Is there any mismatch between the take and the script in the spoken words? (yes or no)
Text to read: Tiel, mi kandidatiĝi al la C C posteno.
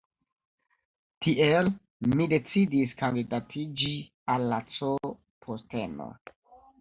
yes